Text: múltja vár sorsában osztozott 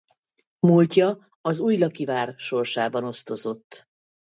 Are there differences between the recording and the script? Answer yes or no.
yes